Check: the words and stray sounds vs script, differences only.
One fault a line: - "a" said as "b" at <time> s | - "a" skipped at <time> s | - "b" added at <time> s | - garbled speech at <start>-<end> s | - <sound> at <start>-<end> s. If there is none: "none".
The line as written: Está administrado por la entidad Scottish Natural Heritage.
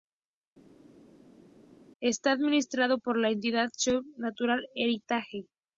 none